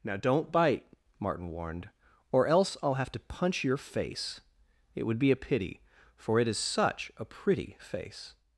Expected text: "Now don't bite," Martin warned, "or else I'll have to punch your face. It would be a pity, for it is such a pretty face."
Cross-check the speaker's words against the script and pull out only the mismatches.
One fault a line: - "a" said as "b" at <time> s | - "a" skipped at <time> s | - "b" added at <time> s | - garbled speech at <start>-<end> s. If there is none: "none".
none